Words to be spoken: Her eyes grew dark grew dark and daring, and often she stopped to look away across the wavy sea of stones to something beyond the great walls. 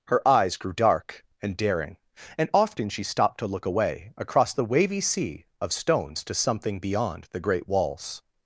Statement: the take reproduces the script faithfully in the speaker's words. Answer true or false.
false